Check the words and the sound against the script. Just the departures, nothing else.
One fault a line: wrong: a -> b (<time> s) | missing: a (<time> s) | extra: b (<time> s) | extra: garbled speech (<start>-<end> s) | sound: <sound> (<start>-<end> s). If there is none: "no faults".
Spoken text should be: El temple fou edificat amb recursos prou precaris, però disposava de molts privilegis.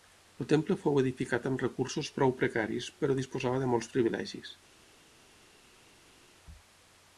no faults